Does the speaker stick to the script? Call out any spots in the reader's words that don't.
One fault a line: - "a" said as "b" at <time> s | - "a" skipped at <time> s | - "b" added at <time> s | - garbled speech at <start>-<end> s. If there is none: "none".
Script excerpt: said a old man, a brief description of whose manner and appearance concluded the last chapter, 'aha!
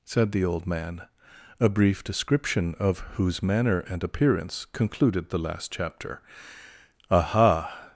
- "a" said as "the" at 0.3 s